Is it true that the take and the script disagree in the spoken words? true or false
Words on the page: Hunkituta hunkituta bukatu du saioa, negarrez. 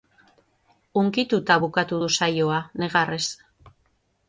true